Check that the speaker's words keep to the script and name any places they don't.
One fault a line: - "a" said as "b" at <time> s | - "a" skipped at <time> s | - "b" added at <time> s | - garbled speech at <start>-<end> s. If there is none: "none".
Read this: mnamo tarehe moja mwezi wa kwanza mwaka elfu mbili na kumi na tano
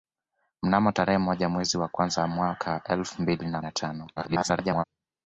- "kumi" skipped at 3.6 s
- garbled speech at 4.2-4.8 s